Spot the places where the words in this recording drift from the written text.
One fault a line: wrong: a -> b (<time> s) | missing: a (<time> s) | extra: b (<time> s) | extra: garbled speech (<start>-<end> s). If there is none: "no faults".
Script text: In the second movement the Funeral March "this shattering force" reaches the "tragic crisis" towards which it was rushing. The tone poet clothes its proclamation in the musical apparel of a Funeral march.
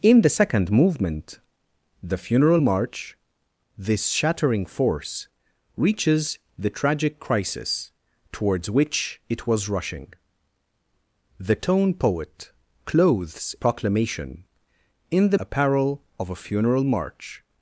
missing: its (13.6 s)
missing: musical (15.4 s)